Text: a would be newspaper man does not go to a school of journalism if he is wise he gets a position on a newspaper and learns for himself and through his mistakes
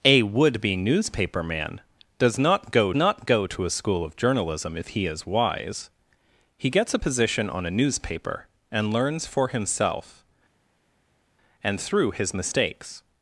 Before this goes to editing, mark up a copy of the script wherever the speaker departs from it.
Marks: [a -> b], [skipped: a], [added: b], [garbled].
a would be newspaper man does not go [added: not go] to a school of journalism if he is wise he gets a position on a newspaper and learns for himself and through his mistakes